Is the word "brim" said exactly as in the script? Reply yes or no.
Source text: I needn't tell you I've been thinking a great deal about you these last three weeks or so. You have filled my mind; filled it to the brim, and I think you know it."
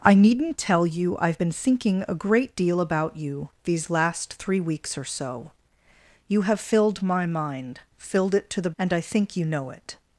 no